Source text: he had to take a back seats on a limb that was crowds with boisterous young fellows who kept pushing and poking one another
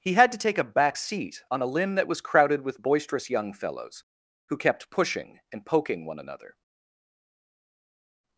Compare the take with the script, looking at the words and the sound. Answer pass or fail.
fail